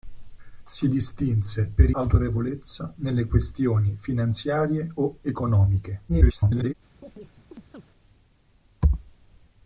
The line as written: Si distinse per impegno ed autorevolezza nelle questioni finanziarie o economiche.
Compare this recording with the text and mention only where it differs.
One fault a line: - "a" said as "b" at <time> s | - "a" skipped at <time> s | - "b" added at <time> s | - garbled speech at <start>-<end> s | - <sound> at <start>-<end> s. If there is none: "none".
- "impegno ed" skipped at 1.9 s
- garbled speech at 6.1-6.7 s
- chirp at 7.0-7.8 s